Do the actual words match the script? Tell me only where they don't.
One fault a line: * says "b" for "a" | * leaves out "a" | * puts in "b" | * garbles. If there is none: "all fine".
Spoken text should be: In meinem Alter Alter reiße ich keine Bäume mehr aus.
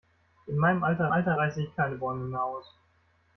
all fine